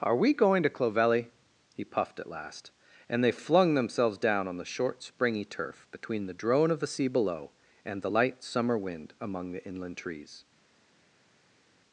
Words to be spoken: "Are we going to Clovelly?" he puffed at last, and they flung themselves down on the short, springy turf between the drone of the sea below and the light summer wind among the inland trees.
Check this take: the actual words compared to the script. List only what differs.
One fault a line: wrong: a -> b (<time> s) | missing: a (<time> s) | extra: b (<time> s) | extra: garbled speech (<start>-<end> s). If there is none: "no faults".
no faults